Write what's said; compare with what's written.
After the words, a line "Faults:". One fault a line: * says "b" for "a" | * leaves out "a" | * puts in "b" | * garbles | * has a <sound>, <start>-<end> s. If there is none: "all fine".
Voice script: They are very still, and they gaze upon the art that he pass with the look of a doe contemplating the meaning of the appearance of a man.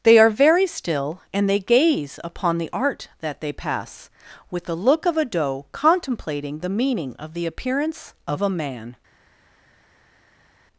They are very still, and they gaze upon the art that they pass with the look of a doe contemplating the meaning of the appearance of a man.
Faults:
* says "they" for "he"